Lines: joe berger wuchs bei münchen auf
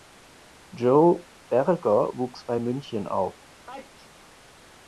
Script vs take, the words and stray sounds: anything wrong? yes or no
yes